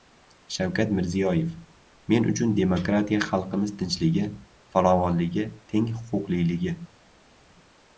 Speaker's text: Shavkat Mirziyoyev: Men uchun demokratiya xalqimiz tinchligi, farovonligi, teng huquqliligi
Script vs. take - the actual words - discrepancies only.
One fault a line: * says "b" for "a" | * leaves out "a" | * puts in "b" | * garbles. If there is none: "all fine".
all fine